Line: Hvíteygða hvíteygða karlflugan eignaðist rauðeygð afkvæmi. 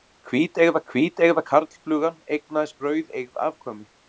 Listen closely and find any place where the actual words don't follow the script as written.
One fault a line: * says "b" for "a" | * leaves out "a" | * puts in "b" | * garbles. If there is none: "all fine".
all fine